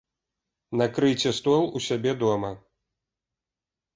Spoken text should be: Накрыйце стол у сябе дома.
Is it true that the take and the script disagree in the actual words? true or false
false